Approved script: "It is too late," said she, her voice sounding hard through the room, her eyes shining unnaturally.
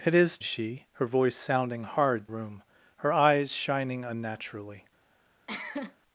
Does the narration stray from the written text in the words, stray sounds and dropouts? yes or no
yes